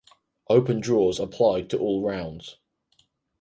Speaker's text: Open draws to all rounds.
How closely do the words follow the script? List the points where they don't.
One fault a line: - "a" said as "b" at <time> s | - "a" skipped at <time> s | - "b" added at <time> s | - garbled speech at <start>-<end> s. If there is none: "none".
- "applied" added at 1.2 s